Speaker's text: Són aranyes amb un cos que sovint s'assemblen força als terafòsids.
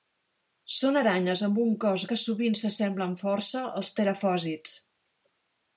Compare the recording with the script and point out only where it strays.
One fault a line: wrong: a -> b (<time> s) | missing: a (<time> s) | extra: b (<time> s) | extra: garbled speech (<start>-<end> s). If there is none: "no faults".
no faults